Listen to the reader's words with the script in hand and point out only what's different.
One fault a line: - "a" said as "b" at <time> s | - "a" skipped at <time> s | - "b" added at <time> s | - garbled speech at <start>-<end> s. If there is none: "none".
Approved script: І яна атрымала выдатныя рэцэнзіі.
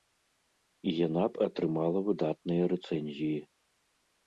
- "б" added at 1.3 s